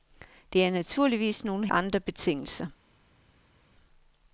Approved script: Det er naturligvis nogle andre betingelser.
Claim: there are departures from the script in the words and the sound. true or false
false